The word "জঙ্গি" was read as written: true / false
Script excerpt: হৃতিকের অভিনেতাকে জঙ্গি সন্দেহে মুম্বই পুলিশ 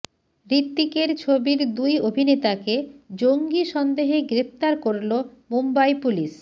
true